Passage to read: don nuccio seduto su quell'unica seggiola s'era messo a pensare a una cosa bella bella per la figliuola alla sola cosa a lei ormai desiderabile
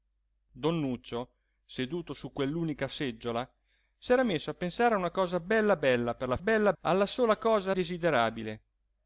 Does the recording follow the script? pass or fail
fail